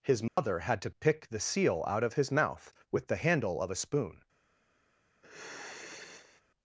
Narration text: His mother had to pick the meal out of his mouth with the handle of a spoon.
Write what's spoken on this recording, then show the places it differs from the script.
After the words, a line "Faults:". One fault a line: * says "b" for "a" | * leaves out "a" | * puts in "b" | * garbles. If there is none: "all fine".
His mother had to pick the seal out of his mouth with the handle of a spoon.
Faults:
* says "seal" for "meal"